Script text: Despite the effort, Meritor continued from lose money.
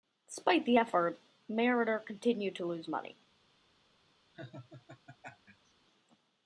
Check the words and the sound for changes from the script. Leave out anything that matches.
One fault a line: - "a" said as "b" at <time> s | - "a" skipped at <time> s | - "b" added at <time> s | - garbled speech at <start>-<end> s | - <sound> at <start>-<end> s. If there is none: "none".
- "from" said as "to" at 2.5 s
- laugh at 4.3-5.7 s